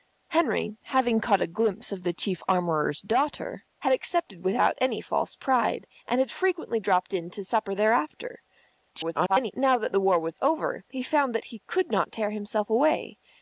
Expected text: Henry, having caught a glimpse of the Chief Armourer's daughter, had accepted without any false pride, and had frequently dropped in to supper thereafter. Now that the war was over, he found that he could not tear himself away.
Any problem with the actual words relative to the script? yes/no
yes